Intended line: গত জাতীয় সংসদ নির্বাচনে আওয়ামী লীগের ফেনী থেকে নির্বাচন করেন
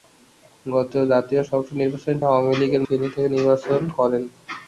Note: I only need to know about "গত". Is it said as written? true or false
true